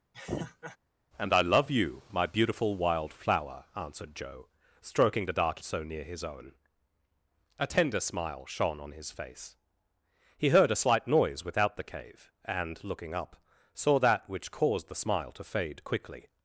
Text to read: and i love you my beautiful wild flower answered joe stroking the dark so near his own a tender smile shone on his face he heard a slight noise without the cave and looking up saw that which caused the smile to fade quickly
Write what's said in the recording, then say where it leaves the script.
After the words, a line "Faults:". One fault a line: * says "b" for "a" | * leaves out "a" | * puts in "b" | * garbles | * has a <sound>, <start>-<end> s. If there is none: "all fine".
and i love you my beautiful wild flower answered joe stroking the dark so near his own a tender smile shone on his face he heard a slight noise without the cave and looking up saw that which caused the smile to fade quickly
Faults:
* has a laugh, 0.1-0.8 s